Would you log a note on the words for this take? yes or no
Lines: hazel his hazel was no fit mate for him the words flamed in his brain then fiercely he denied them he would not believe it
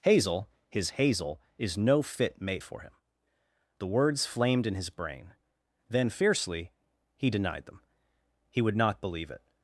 yes